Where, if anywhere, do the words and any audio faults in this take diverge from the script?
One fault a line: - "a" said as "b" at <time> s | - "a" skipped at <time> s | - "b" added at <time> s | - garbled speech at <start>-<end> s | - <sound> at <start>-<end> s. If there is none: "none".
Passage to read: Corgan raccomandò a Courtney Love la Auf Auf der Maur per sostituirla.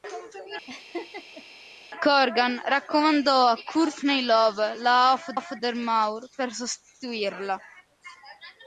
- laugh at 0.7-1.4 s